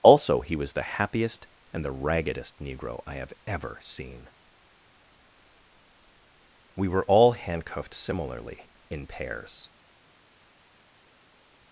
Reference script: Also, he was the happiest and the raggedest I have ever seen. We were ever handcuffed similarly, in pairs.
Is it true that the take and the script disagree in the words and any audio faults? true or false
true